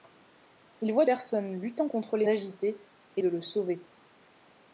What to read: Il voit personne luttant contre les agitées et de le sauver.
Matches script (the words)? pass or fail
pass